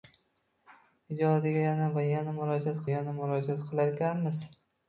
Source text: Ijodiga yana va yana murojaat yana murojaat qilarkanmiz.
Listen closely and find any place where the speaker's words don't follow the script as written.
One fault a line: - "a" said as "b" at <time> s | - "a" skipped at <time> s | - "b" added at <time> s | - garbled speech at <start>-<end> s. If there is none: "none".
none